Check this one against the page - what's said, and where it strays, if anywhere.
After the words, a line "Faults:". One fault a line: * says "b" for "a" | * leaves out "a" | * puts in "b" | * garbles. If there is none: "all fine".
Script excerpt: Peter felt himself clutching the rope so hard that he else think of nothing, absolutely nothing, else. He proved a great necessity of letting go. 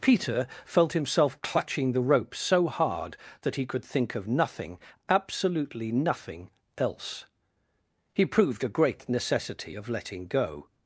Peter felt himself clutching the rope so hard that he could think of nothing, absolutely nothing, else. He proved a great necessity of letting go.
Faults:
* says "could" for "else"